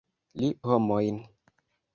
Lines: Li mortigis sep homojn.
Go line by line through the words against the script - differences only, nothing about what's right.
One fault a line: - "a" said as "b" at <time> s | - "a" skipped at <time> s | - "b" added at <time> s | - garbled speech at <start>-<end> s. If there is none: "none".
- "mortigis sep" skipped at 0.5 s